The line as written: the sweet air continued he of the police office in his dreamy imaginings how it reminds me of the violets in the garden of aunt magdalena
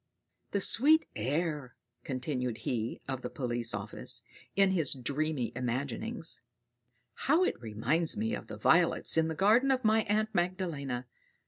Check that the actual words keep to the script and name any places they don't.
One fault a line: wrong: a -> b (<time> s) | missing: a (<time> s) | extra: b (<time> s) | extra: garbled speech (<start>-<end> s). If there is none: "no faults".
extra: my (9.8 s)